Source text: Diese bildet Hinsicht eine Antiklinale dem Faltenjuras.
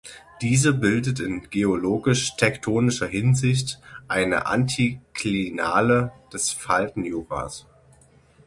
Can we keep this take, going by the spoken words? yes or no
no